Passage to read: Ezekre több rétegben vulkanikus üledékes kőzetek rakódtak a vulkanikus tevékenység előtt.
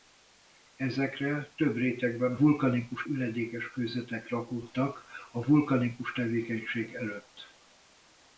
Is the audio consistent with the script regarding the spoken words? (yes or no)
yes